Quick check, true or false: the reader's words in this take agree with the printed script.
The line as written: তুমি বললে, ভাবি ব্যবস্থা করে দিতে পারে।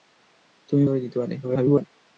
false